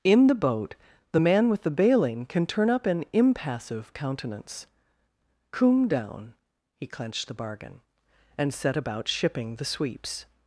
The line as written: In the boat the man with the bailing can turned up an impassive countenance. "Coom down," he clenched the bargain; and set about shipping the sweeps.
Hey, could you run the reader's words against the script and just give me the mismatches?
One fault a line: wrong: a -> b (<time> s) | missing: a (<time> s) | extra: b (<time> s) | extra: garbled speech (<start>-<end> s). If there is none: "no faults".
wrong: turned -> turn (2.5 s)